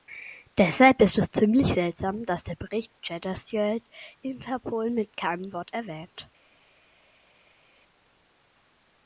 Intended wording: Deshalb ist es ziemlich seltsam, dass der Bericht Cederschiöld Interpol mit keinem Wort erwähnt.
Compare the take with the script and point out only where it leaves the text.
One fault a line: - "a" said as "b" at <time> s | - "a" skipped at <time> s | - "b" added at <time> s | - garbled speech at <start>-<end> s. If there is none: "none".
none